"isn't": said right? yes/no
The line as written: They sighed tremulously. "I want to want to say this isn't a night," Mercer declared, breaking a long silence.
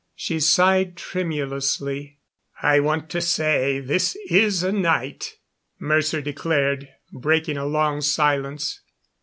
no